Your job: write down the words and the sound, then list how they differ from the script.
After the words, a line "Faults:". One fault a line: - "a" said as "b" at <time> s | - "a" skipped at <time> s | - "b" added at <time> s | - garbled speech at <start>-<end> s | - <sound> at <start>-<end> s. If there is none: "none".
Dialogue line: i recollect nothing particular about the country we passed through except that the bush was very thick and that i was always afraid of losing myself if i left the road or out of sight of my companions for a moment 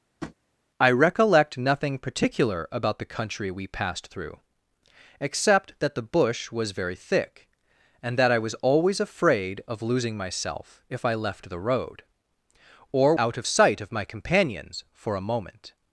i recollect nothing particular about the country we passed through except that the bush was very thick and that i was always afraid of losing myself if i left the road or out of sight of my companions for a moment
Faults:
- tap at 0.2-0.4 s